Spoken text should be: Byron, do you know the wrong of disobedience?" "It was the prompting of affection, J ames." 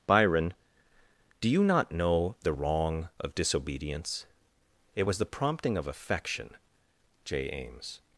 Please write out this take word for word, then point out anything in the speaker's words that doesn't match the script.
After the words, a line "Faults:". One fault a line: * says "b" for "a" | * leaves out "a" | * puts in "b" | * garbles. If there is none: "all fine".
Byron, do you not know the wrong of disobedience?" "It was the prompting of affection, J ames."
Faults:
* puts in "not"